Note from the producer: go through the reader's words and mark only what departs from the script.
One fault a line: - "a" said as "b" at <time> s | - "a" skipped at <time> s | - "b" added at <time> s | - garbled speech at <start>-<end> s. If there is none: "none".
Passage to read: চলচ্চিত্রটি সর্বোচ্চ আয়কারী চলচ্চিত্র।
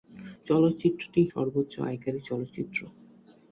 none